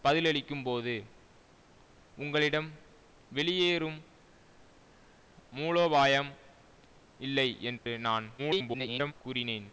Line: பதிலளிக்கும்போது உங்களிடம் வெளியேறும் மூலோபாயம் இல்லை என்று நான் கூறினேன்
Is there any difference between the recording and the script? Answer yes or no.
yes